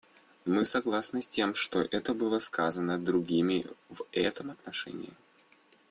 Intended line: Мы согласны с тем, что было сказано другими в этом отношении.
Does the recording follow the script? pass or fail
pass